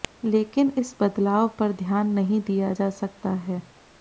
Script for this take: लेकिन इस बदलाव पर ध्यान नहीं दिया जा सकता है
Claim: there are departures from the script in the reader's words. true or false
false